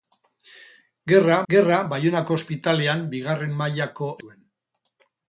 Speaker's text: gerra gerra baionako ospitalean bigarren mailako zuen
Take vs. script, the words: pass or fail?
pass